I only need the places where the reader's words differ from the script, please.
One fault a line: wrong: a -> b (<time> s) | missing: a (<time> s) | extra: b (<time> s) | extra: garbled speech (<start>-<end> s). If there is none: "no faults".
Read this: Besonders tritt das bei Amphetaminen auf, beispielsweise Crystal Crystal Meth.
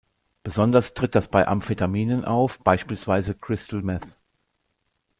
missing: Crystal (3.8 s)